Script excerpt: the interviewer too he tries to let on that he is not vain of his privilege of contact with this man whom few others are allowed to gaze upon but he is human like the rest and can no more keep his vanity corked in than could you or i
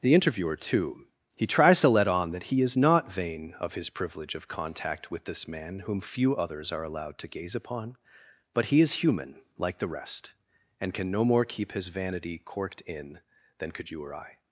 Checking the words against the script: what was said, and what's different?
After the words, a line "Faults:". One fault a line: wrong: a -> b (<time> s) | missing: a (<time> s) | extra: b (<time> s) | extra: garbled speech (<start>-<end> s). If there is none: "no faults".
the interviewer too he tries to let on that he is not vain of his privilege of contact with this man whom few others are allowed to gaze upon but he is human like the rest and can no more keep his vanity corked in than could you or i
Faults:
no faults